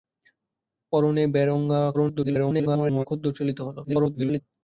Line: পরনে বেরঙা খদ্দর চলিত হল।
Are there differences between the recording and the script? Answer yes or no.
yes